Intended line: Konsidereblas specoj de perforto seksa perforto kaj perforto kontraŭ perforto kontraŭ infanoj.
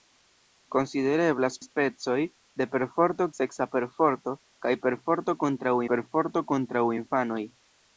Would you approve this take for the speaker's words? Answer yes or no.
yes